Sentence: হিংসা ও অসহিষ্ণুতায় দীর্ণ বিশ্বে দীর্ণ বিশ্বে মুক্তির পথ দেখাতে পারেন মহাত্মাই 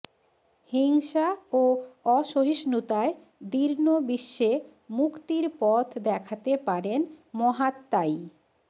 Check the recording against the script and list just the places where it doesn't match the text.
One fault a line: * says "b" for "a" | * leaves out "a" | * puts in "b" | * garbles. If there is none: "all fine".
* leaves out "দীর্ণ বিশ্বে"